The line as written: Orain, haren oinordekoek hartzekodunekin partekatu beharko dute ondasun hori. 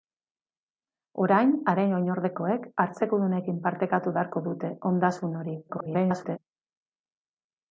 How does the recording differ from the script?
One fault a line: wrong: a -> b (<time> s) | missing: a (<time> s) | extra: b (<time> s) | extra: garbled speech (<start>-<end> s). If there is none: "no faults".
extra: garbled speech (5.7-6.4 s)